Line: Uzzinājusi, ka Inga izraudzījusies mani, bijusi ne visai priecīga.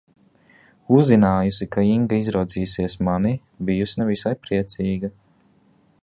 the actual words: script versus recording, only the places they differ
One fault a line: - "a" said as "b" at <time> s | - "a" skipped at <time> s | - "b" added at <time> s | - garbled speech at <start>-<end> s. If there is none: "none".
none